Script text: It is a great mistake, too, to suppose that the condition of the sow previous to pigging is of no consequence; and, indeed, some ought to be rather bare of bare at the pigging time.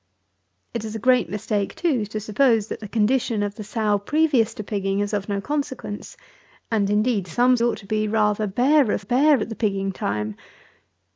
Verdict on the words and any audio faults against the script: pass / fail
pass